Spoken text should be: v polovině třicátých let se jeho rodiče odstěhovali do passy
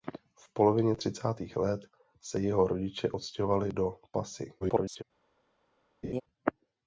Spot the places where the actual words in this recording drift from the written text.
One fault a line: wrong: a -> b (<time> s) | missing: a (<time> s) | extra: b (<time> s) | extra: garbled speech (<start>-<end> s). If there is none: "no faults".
extra: garbled speech (4.6-5.0 s)